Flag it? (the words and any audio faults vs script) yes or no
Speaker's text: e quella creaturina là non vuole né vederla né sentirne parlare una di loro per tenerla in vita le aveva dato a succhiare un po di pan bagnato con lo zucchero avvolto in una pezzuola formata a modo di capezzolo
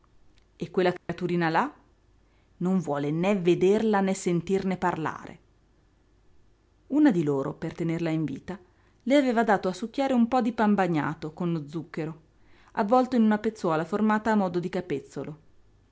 yes